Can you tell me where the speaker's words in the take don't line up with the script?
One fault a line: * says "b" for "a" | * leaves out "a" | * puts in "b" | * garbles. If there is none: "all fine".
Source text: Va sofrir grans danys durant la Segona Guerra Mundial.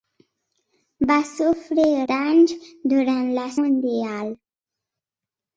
* leaves out "grans"
* leaves out "Segona Guerra"